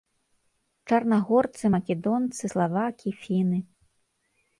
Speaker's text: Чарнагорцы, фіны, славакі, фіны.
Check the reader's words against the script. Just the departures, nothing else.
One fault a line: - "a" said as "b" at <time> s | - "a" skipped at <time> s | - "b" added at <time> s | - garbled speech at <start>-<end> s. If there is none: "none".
- "фіны" said as "македонцы" at 1.7 s